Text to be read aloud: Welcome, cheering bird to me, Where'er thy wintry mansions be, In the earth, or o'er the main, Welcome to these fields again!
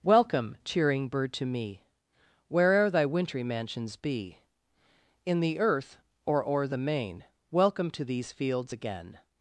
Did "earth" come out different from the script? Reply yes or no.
no